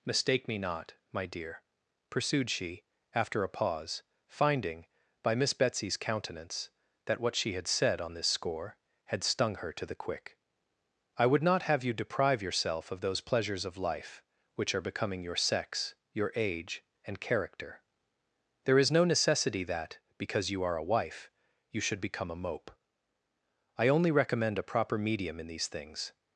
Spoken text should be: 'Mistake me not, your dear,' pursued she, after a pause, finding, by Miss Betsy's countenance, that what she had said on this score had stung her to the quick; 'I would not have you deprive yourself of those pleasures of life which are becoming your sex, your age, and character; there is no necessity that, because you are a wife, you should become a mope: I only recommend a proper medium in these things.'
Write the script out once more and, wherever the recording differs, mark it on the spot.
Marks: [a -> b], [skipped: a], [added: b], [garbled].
'Mistake me not, [your -> my] dear,' pursued she, after a pause, finding, by Miss Betsy's countenance, that what she had said on this score had stung her to the quick; 'I would not have you deprive yourself of those pleasures of life which are becoming your sex, your age, and character; there is no necessity that, because you are a wife, you should become a mope: I only recommend a proper medium in these things.'